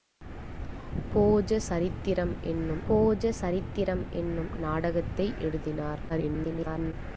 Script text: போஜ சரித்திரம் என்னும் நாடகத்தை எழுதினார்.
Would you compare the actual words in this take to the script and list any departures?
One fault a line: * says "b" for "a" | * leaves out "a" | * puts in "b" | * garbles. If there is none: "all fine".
* puts in "போஜ சரித்திரம் என்னும்"
* garbles